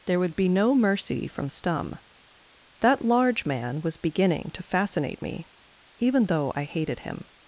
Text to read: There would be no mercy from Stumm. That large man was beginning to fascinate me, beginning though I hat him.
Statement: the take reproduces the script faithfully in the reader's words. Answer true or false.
false